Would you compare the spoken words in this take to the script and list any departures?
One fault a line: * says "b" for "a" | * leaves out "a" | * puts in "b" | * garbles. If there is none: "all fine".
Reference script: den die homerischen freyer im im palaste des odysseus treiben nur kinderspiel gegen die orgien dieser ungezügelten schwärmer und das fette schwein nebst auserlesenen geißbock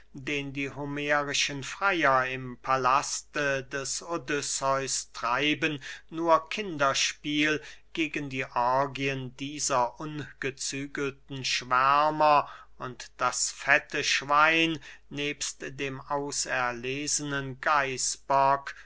* leaves out "im"
* puts in "dem"